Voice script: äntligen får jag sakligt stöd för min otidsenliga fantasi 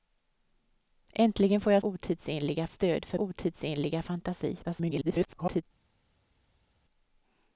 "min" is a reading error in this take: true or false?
true